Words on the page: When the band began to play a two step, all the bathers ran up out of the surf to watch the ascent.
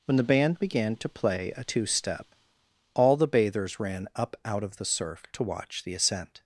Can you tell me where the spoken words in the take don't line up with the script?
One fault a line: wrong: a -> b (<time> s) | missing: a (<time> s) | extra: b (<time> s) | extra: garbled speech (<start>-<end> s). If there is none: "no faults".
no faults